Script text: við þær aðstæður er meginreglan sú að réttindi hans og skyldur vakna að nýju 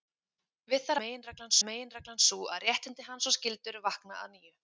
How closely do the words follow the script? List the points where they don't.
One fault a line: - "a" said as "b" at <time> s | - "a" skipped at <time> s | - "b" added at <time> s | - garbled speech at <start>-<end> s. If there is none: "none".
- "aðstæður" said as "meginreglan" at 1.0 s